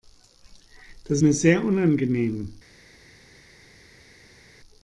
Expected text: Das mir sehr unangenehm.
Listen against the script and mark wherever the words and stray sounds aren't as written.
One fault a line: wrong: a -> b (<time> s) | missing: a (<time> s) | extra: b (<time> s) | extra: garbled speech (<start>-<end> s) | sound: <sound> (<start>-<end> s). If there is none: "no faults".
no faults